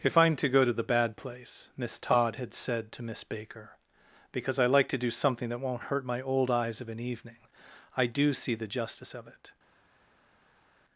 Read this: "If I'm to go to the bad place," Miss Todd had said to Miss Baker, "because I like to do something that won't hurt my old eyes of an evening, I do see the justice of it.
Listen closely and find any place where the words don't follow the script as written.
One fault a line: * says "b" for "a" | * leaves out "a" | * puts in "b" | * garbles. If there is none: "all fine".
all fine